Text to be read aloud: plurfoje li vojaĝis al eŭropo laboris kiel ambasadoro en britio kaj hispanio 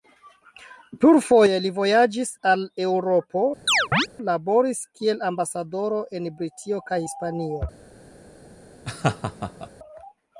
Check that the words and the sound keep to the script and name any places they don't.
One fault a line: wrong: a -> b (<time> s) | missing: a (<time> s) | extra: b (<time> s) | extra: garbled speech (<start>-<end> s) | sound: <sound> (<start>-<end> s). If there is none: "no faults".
sound: chirp (3.7-4.1 s)
sound: laugh (8.8-9.7 s)